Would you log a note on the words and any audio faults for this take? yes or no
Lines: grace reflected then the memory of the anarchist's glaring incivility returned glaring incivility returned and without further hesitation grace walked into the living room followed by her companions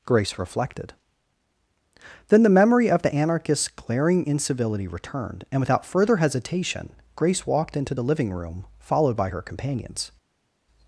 yes